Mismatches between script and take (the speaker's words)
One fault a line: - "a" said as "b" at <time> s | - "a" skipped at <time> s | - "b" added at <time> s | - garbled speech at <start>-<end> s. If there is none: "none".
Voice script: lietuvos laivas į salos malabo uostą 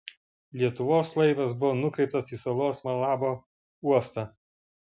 - "buvo nukreiptas" added at 1.6 s